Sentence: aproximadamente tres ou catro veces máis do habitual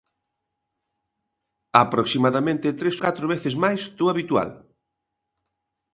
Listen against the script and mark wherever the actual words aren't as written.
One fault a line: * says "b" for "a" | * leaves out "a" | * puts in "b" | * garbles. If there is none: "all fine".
* leaves out "ou"